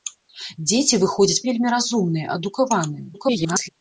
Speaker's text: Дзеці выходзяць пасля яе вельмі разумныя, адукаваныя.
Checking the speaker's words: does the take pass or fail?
fail